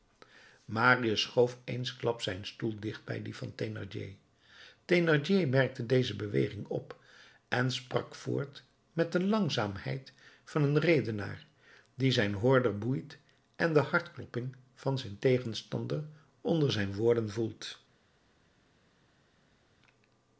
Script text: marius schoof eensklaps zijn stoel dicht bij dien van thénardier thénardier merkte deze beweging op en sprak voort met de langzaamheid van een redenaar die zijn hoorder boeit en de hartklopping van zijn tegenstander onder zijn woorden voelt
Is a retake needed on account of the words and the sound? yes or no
no